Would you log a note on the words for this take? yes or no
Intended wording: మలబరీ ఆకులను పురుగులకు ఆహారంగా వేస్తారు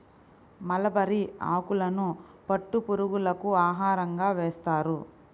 yes